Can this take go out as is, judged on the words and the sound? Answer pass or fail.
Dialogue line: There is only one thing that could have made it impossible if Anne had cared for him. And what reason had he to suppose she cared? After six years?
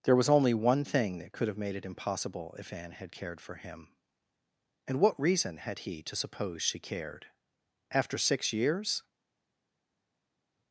fail